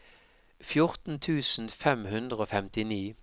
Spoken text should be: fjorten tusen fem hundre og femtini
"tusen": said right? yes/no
yes